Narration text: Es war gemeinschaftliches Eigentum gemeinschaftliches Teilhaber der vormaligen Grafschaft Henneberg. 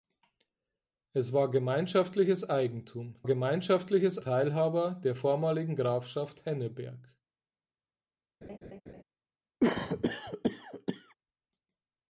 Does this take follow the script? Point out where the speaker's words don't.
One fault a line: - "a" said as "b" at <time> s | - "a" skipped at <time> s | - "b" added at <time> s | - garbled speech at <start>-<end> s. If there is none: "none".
none